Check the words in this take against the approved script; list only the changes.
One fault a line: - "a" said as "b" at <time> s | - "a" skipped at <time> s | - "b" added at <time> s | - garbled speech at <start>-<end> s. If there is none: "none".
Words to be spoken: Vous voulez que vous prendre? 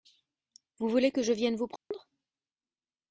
- "je vienne" added at 1.2 s